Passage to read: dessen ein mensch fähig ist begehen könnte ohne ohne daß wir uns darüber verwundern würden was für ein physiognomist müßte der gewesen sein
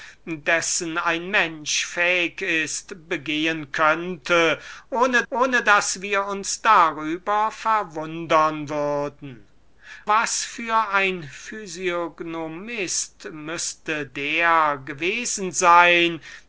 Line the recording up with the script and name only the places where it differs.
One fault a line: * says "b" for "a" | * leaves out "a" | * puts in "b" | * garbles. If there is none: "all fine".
all fine